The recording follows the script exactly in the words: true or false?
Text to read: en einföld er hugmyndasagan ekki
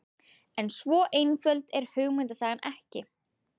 false